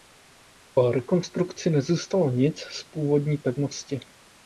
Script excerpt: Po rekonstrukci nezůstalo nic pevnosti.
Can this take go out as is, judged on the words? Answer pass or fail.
fail